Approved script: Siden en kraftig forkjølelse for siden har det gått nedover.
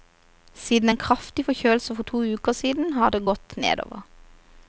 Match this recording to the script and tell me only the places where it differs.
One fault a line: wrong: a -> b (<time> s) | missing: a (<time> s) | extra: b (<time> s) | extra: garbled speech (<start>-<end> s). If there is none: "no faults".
extra: to uker (2.1 s)